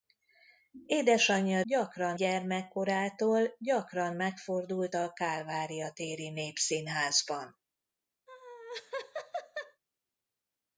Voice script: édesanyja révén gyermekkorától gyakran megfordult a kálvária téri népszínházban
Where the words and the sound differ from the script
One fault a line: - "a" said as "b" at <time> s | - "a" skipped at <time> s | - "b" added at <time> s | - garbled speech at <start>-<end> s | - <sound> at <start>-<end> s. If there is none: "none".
- "révén" said as "gyakran" at 1.6 s
- laugh at 8.3-9.8 s